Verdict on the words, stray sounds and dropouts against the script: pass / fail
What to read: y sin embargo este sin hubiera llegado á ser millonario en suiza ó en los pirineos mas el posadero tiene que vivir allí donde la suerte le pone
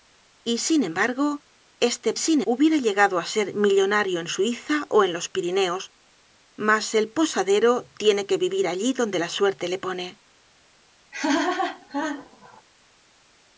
fail